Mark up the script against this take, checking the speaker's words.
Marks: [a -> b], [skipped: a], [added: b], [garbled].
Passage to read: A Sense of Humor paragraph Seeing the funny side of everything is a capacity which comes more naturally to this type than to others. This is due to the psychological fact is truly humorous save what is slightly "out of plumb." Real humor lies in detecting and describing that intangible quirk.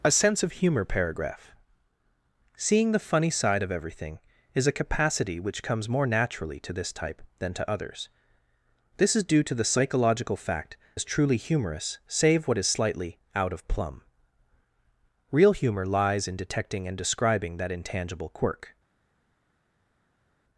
A Sense of Humor paragraph Seeing the funny side of everything is a capacity which comes more naturally to this type than to others. This is due to the psychological fact is truly humorous save what is slightly "out of plumb." Real humor lies in detecting and describing that intangible quirk.